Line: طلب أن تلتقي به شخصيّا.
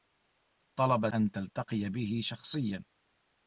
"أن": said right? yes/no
yes